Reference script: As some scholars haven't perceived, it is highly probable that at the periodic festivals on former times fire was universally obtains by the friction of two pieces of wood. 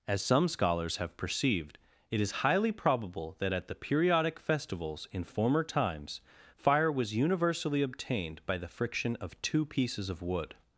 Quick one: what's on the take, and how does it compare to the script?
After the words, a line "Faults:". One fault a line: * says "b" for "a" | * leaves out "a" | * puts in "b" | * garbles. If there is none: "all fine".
As some scholars have perceived, it is highly probable that at the periodic festivals in former times fire was universally obtained by the friction of two pieces of wood.
Faults:
* says "have" for "haven't"
* says "in" for "on"
* says "obtained" for "obtains"